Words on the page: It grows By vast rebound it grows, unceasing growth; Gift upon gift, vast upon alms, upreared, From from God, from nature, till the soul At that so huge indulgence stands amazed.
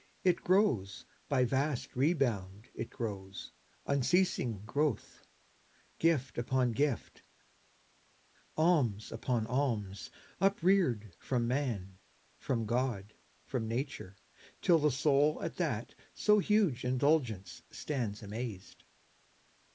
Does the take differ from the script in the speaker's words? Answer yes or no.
yes